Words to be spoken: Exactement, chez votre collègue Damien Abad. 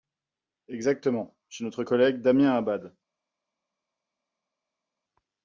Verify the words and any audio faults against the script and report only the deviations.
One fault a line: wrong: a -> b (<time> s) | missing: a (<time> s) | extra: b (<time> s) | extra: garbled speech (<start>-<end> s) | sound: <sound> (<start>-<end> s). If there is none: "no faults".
wrong: votre -> notre (1.6 s)